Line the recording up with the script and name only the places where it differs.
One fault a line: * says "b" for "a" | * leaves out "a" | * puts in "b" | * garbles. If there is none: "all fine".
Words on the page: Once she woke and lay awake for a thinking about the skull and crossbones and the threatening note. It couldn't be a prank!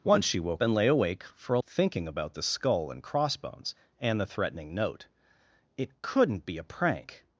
all fine